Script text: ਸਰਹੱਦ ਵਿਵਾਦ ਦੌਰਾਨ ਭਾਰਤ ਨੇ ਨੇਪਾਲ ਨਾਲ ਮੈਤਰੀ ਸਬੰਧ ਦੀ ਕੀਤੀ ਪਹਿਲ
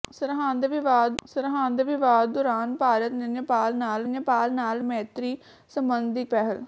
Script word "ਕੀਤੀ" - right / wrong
wrong